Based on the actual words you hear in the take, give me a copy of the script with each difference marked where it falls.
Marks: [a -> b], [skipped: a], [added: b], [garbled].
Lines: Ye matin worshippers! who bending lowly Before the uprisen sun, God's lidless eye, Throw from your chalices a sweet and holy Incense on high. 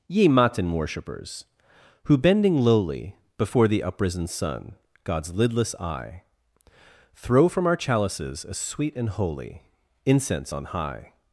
Ye matin worshippers! who bending lowly Before the uprisen sun, God's lidless eye, Throw from [your -> our] chalices a sweet and holy Incense on high.